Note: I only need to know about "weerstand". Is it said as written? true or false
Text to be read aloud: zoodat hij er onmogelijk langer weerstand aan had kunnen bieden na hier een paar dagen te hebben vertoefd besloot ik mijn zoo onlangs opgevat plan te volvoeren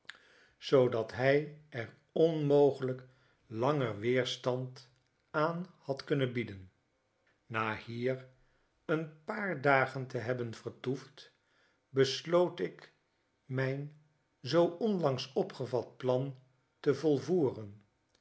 true